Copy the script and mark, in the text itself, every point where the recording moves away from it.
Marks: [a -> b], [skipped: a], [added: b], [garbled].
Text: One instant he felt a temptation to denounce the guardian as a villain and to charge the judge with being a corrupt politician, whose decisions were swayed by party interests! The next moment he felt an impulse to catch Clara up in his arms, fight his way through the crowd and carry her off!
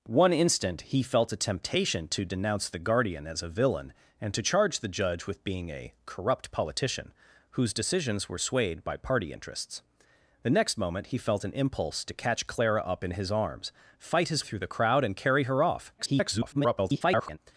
One instant he felt a temptation to denounce the guardian as a villain and to charge the judge with being a corrupt politician, whose decisions were swayed by party interests! The next moment he felt an impulse to catch Clara up in his arms, fight his [skipped: way] through the crowd and carry her off! [garbled]